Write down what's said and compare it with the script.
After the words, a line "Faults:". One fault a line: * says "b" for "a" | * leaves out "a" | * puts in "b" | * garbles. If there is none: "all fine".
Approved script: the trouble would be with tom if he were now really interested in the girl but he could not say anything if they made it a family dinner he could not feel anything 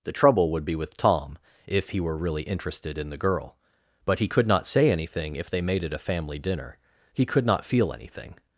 the trouble would be with tom if he were really interested in the girl but he could not say anything if they made it a family dinner he could not feel anything
Faults:
* leaves out "now"